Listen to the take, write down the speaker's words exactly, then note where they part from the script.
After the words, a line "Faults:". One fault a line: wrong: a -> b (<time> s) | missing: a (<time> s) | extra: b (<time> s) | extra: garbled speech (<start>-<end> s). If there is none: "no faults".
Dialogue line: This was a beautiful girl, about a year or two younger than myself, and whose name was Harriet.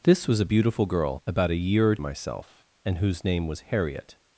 This was a beautiful girl, about a year or myself, and whose name was Harriet.
Faults:
missing: two younger than (2.0 s)